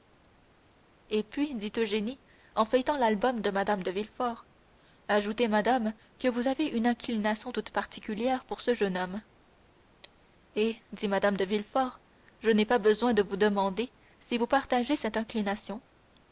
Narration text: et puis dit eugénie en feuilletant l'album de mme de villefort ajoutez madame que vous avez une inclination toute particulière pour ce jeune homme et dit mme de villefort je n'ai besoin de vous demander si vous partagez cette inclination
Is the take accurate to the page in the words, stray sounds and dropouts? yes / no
no